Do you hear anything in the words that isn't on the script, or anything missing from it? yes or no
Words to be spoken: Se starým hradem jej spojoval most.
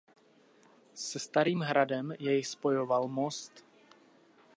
no